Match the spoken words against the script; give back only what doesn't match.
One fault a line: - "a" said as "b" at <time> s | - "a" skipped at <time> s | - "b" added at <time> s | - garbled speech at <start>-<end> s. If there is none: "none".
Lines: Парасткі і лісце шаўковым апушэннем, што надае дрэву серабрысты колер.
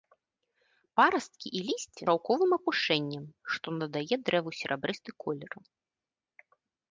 none